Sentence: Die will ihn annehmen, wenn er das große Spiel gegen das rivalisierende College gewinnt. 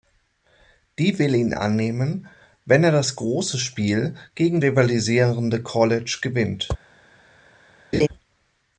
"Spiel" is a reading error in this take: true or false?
false